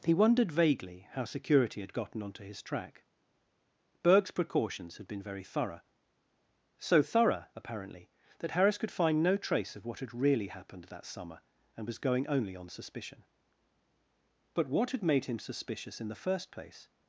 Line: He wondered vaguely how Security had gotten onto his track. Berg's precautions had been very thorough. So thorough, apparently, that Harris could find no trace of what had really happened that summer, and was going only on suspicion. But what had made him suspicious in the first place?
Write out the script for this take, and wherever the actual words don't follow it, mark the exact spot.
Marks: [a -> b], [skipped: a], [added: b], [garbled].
He wondered vaguely how Security had gotten onto his track. Berg's precautions had been very thorough. So thorough, apparently, that Harris could find no trace of what had really happened that summer, and was going only on suspicion. But what had made him suspicious in the first place?